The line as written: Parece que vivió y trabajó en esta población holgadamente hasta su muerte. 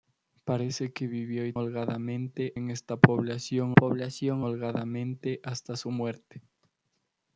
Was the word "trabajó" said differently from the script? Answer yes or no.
yes